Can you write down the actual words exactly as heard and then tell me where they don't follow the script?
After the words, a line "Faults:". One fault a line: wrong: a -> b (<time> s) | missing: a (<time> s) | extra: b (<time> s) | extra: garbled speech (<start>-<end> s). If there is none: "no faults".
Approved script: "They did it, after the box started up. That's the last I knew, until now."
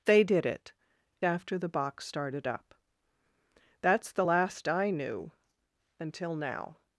"They did it, after the box started up. That's the last I knew, until now."
Faults:
no faults